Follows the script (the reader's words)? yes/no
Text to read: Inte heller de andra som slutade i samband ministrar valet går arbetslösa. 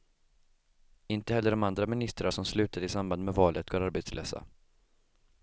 no